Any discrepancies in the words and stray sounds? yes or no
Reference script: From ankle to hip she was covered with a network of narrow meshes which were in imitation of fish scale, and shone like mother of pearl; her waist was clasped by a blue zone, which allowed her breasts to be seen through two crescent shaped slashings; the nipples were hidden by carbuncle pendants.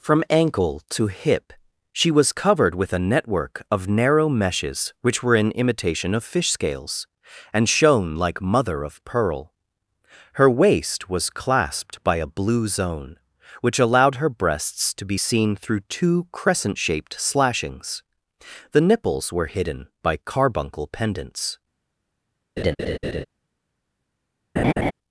yes